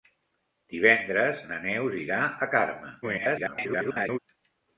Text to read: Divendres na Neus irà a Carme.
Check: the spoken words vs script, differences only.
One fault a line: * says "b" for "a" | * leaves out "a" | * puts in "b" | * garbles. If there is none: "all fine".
* garbles